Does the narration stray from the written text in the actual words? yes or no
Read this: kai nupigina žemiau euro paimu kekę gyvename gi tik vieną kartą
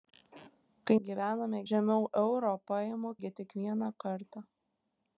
yes